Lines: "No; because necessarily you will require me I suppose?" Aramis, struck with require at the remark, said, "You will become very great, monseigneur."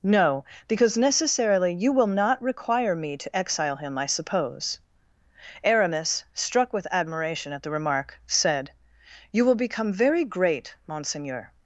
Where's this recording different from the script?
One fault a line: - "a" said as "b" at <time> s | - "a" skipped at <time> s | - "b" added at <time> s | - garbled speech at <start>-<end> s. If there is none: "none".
- "not" added at 2.1 s
- "to exile him" added at 3.2 s
- "require" said as "admiration" at 6.9 s